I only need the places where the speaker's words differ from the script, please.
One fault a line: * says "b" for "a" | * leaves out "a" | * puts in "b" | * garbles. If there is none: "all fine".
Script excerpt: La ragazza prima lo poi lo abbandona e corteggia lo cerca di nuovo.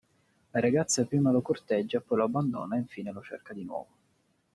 * puts in "corteggia"
* says "infine" for "corteggia"